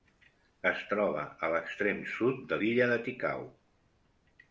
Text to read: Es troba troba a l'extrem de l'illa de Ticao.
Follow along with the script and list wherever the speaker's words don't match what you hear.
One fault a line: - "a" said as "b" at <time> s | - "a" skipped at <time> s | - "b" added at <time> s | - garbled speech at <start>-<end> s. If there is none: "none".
- "troba" skipped at 1.2 s
- "sud" added at 2.1 s